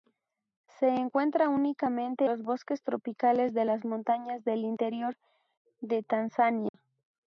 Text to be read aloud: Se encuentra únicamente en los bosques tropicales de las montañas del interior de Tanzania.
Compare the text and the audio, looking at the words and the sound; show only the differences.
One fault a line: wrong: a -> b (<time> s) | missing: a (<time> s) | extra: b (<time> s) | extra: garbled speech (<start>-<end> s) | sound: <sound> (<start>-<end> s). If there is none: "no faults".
missing: en (2.2 s)
sound: dropout (6.7-6.7 s)